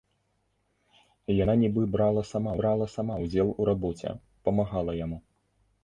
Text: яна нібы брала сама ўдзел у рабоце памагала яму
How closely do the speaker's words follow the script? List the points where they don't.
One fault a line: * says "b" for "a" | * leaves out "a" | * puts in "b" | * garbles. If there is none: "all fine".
* puts in "брала сама"